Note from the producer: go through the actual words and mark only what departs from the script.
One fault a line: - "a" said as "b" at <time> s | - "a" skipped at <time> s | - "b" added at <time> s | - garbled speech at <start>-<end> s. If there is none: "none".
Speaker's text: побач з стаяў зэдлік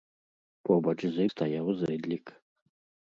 none